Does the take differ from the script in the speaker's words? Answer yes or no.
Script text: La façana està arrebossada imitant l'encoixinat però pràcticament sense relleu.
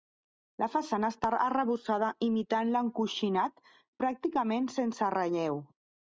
yes